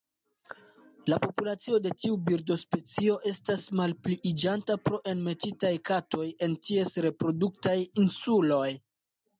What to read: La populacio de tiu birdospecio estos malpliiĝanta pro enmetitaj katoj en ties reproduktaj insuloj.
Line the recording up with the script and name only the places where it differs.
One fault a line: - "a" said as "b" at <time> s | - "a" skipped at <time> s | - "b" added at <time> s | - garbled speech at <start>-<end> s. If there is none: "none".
- "estos" said as "estas" at 3.3 s